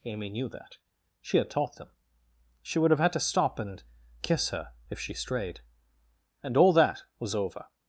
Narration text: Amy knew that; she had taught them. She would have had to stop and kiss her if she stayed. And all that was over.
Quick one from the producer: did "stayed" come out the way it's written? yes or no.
no